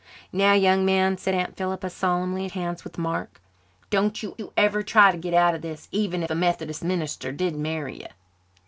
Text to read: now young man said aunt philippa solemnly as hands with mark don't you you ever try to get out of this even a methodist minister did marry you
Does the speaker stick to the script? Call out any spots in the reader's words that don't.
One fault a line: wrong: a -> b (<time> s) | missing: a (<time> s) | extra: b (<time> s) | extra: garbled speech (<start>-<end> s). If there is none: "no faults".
no faults